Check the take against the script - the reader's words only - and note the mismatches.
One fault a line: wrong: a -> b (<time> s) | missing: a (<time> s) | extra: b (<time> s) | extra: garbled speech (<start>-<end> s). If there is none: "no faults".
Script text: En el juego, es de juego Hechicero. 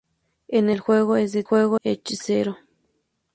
no faults